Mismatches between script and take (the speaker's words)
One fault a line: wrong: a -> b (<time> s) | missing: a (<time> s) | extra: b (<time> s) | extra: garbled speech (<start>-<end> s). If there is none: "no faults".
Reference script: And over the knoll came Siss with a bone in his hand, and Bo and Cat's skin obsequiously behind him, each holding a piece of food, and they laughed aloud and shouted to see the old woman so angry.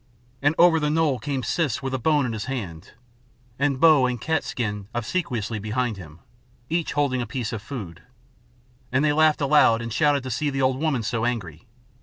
no faults